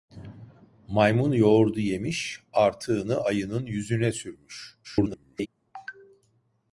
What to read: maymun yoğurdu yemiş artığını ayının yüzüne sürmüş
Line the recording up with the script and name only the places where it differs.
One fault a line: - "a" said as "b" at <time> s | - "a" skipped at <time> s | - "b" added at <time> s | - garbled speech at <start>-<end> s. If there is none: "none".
- garbled speech at 4.8-5.5 s